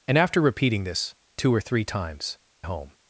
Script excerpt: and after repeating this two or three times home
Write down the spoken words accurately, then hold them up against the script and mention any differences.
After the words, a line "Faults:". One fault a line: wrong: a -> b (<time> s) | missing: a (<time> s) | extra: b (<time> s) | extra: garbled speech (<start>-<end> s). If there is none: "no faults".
and after repeating this two or three times home
Faults:
no faults